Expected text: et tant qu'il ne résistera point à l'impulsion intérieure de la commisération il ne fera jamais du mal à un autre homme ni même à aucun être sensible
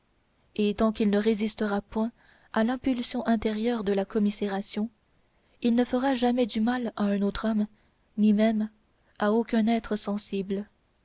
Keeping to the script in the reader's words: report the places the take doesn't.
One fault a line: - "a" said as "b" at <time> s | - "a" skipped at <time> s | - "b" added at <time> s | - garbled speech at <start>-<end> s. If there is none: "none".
none